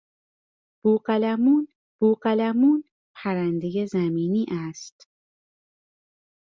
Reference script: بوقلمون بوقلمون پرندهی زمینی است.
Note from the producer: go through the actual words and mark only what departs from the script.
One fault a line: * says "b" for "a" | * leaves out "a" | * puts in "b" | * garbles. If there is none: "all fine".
all fine